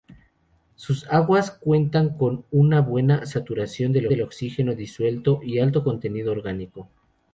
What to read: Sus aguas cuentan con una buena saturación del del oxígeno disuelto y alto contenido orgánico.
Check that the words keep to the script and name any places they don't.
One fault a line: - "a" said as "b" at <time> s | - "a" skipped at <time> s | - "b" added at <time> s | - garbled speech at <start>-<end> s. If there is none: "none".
none